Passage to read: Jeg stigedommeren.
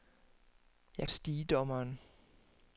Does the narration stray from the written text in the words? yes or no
no